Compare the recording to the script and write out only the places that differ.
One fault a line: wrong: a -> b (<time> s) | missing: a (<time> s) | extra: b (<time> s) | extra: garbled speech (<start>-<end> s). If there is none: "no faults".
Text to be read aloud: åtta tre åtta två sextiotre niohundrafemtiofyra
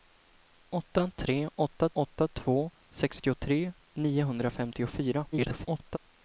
extra: åtta (1.9 s)
extra: garbled speech (5.3-6.0 s)